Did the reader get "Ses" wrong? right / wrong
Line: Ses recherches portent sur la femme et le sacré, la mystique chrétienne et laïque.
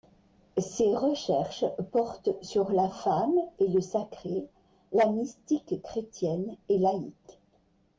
right